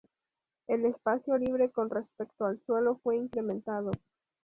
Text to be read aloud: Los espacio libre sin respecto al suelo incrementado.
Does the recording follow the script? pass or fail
fail